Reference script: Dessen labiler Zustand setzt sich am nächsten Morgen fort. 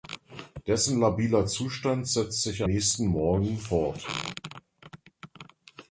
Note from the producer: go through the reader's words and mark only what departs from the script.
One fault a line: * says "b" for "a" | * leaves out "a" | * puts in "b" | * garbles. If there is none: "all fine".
* leaves out "am"